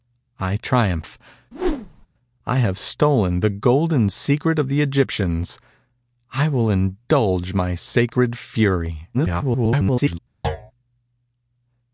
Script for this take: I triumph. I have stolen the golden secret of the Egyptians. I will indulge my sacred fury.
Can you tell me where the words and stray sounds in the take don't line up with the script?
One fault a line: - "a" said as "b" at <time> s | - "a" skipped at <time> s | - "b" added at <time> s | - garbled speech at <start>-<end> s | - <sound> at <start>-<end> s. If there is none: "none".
- whoosh at 1.5-2.1 s
- garbled speech at 9.1-10.2 s
- thud at 10.4-10.7 s